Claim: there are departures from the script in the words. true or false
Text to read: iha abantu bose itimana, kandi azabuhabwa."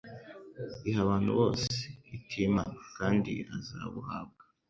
false